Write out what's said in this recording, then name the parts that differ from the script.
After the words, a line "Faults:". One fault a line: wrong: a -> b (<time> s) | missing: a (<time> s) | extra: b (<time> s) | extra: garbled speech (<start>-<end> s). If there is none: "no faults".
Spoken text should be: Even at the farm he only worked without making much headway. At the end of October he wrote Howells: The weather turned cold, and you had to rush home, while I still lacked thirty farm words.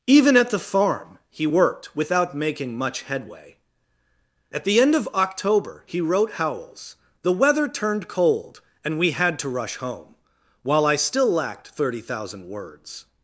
Even at the farm he worked without making much headway. At the end of October he wrote Howells: The weather turned cold, and we had to rush home, while I still lacked thirty thousand words.
Faults:
missing: only (1.5 s)
wrong: you -> we (9.0 s)
wrong: farm -> thousand (12.0 s)